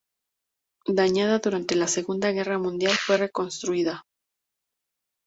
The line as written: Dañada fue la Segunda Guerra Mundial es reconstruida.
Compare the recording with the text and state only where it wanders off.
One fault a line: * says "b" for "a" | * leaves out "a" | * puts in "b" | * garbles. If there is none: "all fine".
* says "durante" for "fue"
* says "fue" for "es"